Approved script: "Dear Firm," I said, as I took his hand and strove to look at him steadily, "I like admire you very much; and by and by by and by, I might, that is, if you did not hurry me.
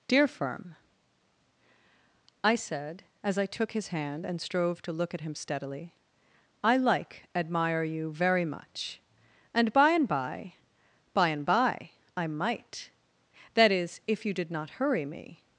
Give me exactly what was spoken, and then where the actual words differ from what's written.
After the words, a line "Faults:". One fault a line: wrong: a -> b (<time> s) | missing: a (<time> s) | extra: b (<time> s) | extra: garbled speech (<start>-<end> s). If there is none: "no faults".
"Dear Firm," I said, as I took his hand and strove to look at him steadily, "I like admire you very much; and by and by by and by, I might, that is, if you did not hurry me.
Faults:
no faults